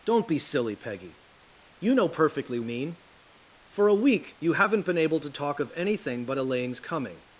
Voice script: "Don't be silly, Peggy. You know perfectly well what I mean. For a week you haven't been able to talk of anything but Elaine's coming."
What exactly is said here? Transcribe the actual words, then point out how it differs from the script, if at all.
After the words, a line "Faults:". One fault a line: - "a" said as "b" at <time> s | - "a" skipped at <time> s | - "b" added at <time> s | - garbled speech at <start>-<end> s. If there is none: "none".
"Don't be silly, Peggy. You know perfectly mean. For a week you haven't been able to talk of anything but Elaine's coming."
Faults:
- "well what I" skipped at 2.6 s